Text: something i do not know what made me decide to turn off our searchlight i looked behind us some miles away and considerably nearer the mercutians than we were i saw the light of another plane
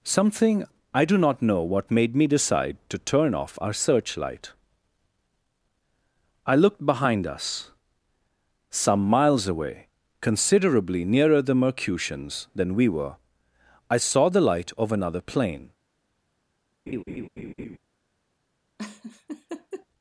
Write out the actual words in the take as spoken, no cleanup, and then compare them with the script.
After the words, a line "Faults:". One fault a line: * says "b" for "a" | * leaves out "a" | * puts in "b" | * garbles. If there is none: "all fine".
something i do not know what made me decide to turn off our searchlight i looked behind us some miles away considerably nearer the mercutians than we were i saw the light of another plane
Faults:
* leaves out "and"